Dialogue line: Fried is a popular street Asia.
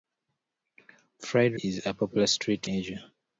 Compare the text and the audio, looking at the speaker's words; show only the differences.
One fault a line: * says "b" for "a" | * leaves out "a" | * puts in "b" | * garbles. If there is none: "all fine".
all fine